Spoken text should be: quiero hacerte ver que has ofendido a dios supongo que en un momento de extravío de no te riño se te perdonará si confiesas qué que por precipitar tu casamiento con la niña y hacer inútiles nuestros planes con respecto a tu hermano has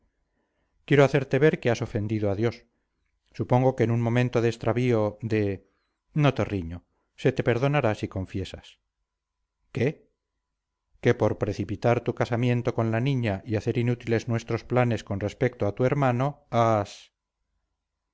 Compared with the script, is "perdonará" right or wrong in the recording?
right